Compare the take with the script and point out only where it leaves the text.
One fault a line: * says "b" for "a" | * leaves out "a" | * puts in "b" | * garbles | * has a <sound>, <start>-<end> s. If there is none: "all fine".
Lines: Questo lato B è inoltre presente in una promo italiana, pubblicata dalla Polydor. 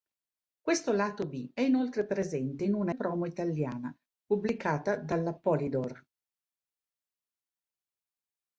all fine